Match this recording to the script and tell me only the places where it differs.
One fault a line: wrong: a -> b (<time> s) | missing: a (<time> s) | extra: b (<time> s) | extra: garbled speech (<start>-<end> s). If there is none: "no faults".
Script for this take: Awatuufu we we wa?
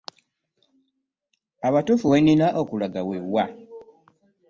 extra: nnina okulaga (2.2 s)